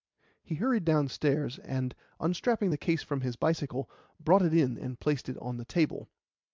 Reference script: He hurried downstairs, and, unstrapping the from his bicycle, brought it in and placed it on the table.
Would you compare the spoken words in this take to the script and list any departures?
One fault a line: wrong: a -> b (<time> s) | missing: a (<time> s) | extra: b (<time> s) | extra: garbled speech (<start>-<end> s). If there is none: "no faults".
extra: case (2.8 s)